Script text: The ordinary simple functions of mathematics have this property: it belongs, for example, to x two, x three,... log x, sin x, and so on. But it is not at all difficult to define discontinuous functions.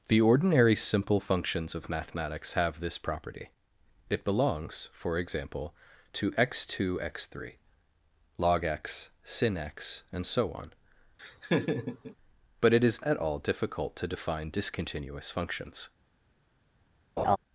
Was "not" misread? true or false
true